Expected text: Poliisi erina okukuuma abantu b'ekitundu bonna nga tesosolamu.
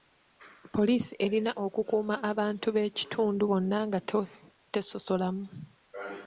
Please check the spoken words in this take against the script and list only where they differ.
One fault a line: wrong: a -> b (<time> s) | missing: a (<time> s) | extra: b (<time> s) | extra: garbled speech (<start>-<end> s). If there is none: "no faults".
no faults